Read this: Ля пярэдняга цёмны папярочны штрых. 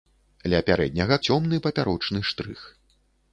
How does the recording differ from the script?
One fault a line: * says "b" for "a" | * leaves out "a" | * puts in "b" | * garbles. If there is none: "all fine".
all fine